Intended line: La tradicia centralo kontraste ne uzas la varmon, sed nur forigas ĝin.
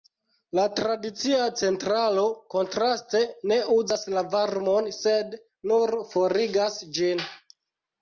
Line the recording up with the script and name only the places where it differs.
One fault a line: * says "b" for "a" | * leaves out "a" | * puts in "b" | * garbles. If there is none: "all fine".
all fine